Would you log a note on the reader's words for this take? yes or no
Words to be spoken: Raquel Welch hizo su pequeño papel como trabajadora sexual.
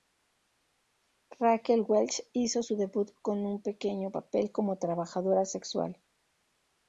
yes